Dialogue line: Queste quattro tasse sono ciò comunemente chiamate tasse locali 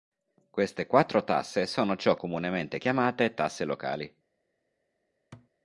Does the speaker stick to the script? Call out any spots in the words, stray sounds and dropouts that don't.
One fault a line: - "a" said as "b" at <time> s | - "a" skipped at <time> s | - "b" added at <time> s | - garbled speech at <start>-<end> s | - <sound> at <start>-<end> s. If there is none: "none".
- thud at 5.3-5.5 s